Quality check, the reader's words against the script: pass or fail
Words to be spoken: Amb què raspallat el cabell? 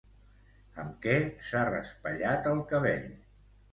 fail